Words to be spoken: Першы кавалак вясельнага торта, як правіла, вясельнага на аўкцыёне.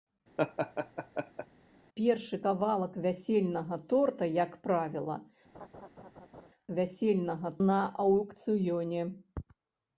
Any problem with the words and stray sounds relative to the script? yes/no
yes